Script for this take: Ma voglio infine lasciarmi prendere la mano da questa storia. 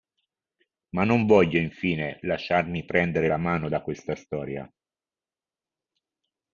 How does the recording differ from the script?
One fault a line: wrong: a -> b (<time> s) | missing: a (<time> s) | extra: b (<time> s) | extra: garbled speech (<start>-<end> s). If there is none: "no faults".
extra: non (1.0 s)